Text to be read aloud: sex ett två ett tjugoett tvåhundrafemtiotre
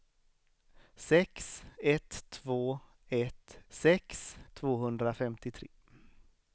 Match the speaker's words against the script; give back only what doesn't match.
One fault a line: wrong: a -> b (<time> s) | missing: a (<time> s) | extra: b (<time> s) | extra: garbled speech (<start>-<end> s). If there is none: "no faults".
wrong: tjugoett -> sex (3.7 s)